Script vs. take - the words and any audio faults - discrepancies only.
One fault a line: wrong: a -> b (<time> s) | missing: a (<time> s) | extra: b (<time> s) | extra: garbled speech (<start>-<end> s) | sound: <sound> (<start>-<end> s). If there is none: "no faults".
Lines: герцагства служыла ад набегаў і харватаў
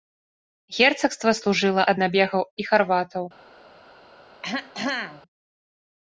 sound: throat clearing (4.4-5.2 s)